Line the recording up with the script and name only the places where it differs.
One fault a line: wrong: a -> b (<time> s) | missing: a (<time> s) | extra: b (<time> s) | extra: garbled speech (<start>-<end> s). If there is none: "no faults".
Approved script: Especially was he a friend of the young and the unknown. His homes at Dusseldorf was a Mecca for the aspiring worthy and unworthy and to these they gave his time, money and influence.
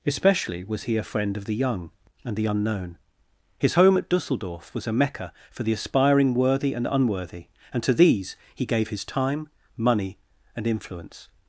wrong: homes -> home (3.7 s)
wrong: they -> he (8.5 s)